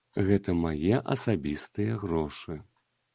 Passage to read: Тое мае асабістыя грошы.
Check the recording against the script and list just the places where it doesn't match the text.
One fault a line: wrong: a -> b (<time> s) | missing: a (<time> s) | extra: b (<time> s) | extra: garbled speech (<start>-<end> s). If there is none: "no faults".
wrong: Тое -> Гэта (0.3 s)